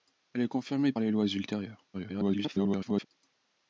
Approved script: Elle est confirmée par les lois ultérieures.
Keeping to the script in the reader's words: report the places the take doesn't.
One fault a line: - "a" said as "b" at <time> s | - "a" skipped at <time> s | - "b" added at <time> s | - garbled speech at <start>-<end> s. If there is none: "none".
- "par" skipped at 0.9 s
- garbled speech at 1.9-3.1 s